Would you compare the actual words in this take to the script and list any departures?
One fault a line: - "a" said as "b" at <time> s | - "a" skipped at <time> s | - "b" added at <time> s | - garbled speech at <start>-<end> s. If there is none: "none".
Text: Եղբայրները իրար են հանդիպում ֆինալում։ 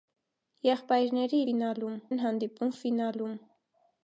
- "իրար" said as "ֆինալում" at 1.5 s